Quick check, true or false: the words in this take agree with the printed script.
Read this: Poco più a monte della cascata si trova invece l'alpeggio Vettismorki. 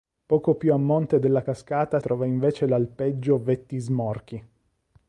false